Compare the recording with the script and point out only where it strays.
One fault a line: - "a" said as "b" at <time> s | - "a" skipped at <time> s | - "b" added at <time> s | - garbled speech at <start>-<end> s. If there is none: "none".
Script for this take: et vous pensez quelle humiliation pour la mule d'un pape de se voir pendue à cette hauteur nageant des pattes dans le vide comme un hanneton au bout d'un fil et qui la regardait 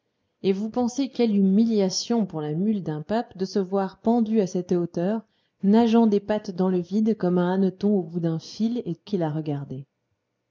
none